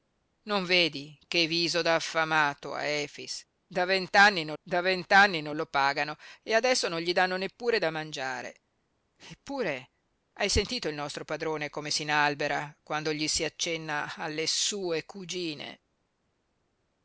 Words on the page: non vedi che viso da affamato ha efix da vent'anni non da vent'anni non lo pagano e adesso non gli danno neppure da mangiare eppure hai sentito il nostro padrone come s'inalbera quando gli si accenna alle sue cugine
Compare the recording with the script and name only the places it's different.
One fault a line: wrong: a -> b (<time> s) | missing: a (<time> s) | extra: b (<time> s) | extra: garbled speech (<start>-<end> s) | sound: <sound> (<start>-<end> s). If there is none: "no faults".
no faults